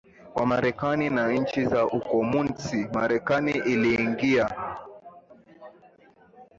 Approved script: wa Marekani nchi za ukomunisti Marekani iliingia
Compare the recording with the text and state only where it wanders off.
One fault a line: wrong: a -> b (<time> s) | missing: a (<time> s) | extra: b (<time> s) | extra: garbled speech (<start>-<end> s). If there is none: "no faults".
extra: na (1.1 s)